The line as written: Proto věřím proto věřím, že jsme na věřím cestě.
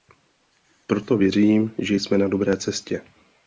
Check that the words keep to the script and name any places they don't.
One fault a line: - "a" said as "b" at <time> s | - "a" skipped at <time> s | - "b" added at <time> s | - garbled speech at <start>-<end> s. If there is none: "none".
- "proto věřím" skipped at 1.7 s
- "věřím" said as "dobré" at 2.3 s